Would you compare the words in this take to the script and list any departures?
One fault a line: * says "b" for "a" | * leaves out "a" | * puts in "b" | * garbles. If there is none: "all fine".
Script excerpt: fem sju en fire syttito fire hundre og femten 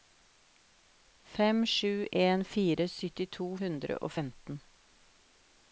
* leaves out "fire"